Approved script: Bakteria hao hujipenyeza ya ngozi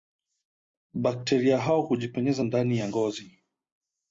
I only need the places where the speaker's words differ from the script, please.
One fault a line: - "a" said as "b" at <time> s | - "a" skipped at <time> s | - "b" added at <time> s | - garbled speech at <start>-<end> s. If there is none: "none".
- "ndani" added at 2.4 s